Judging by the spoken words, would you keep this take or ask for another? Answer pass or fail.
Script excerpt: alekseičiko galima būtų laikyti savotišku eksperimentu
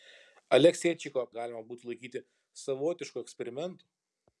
pass